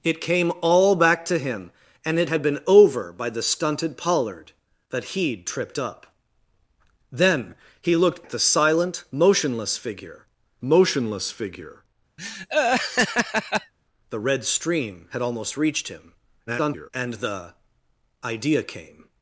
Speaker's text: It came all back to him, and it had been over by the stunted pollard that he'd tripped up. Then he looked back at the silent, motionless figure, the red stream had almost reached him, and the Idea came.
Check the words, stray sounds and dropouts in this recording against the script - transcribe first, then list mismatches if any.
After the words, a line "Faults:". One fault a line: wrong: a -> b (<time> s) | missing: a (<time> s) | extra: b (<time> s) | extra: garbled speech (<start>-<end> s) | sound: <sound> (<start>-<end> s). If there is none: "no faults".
It came all back to him, and it had been over by the stunted pollard that he'd tripped up. Then he looked at the silent, motionless figure motionless figure, the red stream had almost reached him, [garbled] and the Idea came.
Faults:
missing: back (8.2 s)
extra: motionless figure (10.6 s)
sound: laugh (12.2-13.7 s)
extra: garbled speech (16.5-16.9 s)